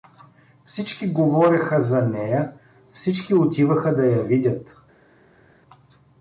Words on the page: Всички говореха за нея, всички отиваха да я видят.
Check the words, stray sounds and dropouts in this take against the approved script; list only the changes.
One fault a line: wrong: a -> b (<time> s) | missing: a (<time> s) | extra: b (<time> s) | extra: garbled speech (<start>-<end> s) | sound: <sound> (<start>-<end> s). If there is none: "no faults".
no faults